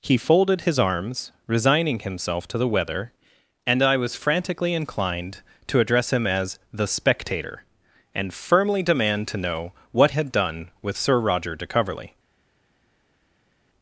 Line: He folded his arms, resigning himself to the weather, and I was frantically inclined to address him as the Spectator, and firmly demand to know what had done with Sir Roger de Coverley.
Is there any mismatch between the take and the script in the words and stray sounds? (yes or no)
no